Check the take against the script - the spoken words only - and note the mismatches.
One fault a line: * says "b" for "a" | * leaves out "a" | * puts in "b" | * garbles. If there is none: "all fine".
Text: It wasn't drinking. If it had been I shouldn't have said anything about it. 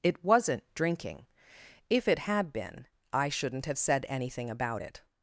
all fine